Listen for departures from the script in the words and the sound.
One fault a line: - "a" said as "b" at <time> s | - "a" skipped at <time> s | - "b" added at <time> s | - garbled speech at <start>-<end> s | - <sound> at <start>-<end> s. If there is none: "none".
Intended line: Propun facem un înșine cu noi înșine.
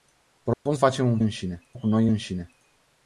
- dropout at 0.5-0.7 s